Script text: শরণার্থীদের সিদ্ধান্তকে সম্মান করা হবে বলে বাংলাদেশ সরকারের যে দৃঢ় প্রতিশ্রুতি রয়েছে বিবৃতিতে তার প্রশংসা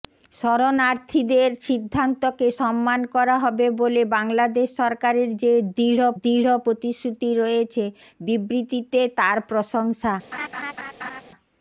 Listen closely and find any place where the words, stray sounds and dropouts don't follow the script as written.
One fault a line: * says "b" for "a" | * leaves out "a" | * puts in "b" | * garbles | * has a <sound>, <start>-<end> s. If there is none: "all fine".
* puts in "দৃঢ়"
* has a laugh, 10.3-11.2 s